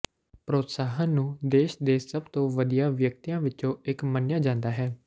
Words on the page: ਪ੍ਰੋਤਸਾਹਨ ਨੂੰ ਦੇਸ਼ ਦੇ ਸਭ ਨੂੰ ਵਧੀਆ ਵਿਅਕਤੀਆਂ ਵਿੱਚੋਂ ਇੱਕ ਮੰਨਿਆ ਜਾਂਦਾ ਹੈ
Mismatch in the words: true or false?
true